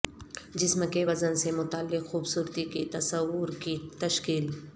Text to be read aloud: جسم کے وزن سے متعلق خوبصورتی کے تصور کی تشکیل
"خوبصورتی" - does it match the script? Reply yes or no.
yes